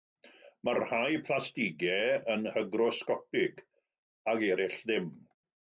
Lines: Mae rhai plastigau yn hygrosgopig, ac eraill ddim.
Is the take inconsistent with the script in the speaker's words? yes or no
no